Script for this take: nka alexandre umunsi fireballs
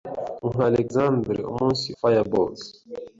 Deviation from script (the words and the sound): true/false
false